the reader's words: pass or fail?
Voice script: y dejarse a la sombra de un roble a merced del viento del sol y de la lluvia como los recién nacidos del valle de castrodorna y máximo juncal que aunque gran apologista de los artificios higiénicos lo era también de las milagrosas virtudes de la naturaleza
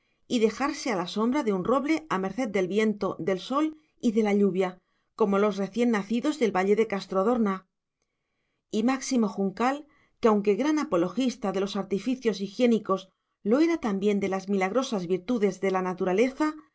pass